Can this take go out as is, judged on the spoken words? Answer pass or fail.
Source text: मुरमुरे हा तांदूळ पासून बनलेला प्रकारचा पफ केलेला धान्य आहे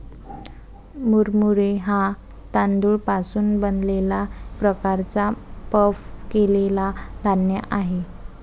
pass